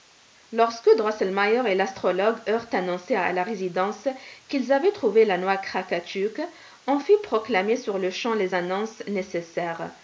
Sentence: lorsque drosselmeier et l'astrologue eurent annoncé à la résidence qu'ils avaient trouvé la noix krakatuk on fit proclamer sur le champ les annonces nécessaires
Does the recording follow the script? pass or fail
pass